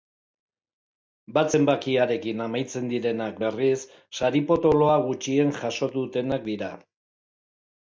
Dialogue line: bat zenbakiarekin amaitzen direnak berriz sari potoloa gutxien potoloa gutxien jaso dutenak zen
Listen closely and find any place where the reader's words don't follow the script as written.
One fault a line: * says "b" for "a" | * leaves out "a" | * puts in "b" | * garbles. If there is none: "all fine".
* leaves out "potoloa gutxien"
* says "dira" for "zen"